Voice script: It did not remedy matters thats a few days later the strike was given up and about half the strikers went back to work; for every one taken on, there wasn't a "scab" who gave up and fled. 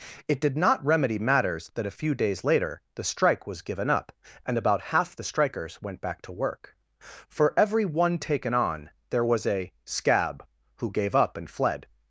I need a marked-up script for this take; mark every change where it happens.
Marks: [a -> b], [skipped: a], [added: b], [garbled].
It did not remedy matters [thats -> that] a few days later the strike was given up and about half the strikers went back to work; for every one taken on, there [wasn't -> was] a "scab" who gave up and fled.